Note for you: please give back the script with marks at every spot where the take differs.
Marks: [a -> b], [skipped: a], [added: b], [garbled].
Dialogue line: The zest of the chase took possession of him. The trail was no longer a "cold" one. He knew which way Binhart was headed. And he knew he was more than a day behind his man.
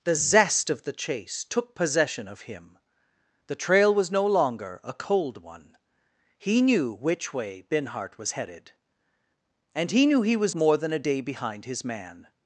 The zest of the chase took possession of him. The trail was no longer a "cold" one. He knew which way Binhart was headed. And he knew he was more than a day behind his man.